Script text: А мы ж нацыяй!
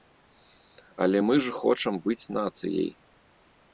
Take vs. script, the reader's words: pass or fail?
fail